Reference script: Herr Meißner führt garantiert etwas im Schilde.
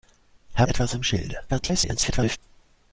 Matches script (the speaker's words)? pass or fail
fail